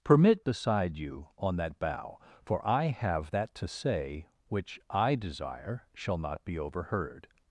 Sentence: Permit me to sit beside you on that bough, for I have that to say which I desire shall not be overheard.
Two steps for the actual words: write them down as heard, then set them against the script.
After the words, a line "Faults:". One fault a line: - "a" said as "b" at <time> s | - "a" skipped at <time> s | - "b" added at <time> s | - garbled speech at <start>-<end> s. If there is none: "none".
Permit beside you on that bough, for I have that to say which I desire shall not be overheard.
Faults:
- "me to sit" skipped at 0.4 s